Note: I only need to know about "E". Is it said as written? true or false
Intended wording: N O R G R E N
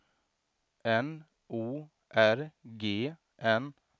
false